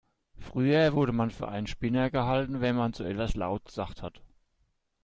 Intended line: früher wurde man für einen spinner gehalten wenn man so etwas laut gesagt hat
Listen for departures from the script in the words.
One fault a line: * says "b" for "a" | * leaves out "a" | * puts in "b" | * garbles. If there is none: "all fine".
all fine